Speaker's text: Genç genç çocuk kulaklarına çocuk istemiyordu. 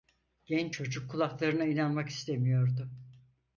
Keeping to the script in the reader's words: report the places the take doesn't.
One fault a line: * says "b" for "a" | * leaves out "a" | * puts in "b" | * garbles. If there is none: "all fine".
* leaves out "genç"
* says "inanmak" for "çocuk"